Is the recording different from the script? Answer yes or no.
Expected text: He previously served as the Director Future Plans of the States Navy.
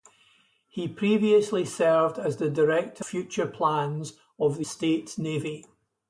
no